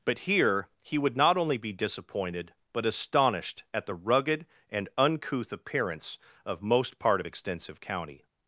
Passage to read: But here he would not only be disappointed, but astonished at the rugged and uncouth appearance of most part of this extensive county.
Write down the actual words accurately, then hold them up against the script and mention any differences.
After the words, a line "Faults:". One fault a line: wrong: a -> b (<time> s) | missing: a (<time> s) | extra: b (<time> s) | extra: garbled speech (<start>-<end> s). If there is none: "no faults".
But here he would not only be disappointed, but astonished at the rugged and uncouth appearance of most part of extensive county.
Faults:
missing: this (7.2 s)